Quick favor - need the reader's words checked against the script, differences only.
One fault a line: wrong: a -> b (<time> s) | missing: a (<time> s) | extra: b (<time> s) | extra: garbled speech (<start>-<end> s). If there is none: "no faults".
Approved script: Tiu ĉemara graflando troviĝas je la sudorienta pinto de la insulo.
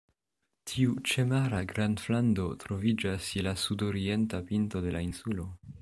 no faults